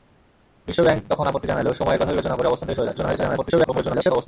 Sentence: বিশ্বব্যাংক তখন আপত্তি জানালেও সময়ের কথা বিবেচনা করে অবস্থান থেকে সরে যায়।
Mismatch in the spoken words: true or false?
true